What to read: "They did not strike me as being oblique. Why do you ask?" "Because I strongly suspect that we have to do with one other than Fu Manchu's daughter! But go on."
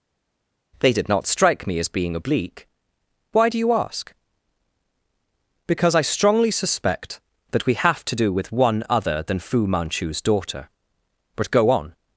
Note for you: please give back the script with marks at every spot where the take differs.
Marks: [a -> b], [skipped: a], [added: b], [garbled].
"They did not strike me as being oblique. Why do you ask?" "Because I strongly suspect that we have to do with one other than Fu Manchu's daughter! But go on."